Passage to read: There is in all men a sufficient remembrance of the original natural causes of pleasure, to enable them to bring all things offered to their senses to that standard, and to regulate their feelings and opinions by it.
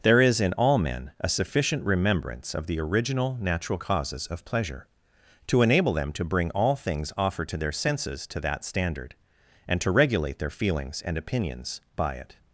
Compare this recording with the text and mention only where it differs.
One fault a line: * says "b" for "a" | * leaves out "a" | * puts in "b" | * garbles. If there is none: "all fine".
all fine